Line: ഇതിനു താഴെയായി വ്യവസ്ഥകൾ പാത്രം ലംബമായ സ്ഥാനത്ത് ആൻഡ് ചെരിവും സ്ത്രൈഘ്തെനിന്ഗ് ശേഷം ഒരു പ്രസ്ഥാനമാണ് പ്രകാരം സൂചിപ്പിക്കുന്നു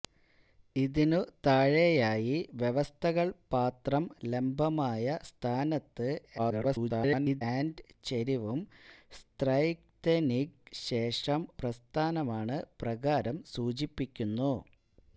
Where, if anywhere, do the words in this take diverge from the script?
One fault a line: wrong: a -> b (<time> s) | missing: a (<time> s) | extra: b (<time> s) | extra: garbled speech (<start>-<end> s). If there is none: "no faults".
extra: garbled speech (6.4-7.4 s)
missing: ഒരു (11.4 s)